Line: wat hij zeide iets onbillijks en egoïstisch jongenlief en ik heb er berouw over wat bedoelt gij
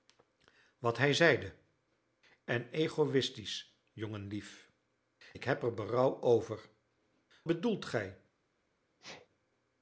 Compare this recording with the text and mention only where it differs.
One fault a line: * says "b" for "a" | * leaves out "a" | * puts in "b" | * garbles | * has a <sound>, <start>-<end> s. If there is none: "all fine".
* leaves out "iets onbillijks"
* leaves out "en"
* leaves out "wat"
* has a sneeze, 9.0-9.3 s